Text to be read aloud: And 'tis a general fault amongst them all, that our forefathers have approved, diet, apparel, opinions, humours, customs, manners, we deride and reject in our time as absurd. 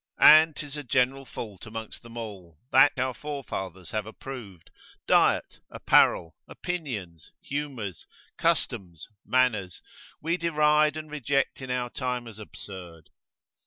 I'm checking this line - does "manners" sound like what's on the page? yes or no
yes